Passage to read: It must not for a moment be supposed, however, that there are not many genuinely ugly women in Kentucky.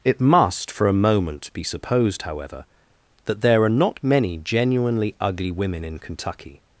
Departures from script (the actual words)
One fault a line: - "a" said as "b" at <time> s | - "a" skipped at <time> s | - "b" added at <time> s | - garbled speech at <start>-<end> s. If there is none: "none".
- "not" skipped at 0.7 s